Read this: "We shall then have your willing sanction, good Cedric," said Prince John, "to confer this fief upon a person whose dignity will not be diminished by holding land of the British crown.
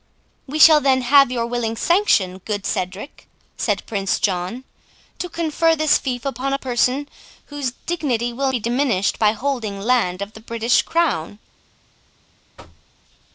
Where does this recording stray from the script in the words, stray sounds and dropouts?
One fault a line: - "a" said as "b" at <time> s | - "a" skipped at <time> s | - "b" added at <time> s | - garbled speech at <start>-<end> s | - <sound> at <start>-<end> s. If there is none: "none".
- "not" skipped at 8.5 s
- thud at 12.6-12.9 s